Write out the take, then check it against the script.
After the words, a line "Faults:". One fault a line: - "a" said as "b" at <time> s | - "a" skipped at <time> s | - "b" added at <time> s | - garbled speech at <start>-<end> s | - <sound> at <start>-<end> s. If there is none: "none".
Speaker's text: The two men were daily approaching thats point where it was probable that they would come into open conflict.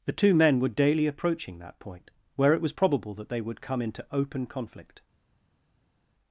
The two men were daily approaching that point where it was probable that they would come into open conflict.
Faults:
- "thats" said as "that" at 1.6 s